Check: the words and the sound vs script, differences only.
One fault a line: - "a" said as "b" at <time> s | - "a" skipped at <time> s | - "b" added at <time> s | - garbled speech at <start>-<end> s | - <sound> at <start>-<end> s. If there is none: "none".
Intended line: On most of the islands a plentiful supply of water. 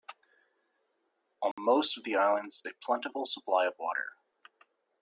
- dropout at 1.5-1.6 s